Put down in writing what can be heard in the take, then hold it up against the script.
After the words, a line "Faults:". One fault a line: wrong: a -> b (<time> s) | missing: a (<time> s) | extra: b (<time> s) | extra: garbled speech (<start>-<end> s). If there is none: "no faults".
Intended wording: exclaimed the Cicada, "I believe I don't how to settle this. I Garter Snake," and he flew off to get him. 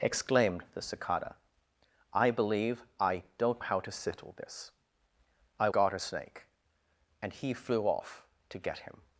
exclaimed the Cicada, "I believe I don't how to settle this. I Garter Snake," and he flew off to get him.
Faults:
no faults